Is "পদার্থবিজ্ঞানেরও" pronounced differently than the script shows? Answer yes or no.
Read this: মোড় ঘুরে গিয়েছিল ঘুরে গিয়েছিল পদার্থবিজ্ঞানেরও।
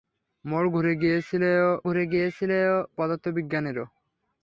no